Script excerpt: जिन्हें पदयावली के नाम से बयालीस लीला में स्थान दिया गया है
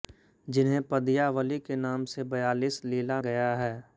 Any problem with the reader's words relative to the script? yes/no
yes